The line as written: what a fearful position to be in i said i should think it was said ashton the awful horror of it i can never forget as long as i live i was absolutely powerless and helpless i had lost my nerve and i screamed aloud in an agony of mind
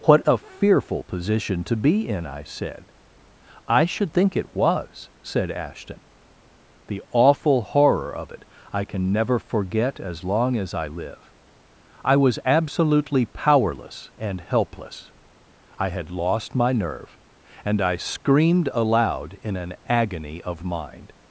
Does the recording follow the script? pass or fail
pass